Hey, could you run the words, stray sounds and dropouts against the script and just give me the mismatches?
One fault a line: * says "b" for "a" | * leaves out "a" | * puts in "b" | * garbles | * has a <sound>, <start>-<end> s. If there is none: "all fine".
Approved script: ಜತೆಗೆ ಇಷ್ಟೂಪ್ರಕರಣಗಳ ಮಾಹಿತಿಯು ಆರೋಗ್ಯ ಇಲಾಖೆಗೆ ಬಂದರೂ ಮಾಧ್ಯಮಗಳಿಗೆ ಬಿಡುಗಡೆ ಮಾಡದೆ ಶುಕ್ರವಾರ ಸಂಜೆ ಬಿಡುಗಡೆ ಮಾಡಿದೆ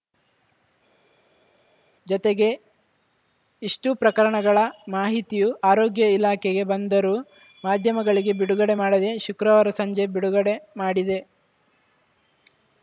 all fine